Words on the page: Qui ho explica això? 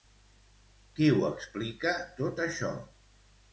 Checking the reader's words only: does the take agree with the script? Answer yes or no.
no